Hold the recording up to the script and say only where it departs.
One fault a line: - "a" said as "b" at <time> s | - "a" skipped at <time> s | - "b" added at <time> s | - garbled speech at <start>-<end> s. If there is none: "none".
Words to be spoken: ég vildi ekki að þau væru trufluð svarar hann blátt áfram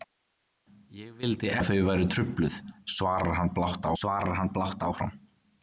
- "ekki" skipped at 1.5 s
- "svarar hann blátt" added at 4.0 s